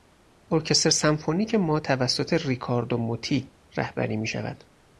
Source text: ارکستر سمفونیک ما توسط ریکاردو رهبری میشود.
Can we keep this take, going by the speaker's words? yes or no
no